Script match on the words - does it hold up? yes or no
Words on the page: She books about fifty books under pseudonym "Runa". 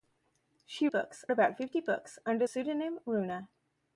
yes